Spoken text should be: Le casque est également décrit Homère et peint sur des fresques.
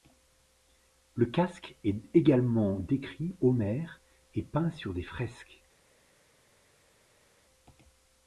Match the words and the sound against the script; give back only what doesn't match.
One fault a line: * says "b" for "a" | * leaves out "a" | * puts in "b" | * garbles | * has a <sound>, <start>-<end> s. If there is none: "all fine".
all fine